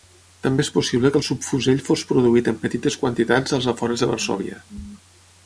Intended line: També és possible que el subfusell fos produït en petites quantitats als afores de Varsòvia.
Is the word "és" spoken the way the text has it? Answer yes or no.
yes